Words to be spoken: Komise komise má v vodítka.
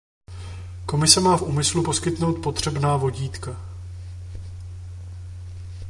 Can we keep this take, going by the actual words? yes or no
no